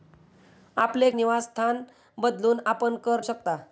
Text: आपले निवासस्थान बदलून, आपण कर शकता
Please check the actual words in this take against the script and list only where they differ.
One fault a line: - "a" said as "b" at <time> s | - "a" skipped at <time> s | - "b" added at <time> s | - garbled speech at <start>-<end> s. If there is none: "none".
none